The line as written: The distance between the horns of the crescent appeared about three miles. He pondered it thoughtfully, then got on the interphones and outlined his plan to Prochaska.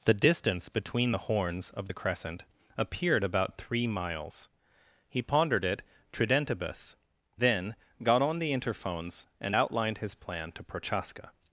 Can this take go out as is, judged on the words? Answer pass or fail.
fail